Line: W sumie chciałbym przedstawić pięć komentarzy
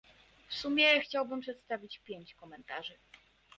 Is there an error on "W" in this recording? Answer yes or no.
no